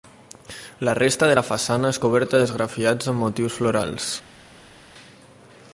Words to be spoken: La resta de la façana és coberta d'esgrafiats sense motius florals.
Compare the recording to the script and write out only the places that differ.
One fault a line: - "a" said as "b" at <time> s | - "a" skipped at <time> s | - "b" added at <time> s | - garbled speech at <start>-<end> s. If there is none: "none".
- "sense" said as "amb" at 3.1 s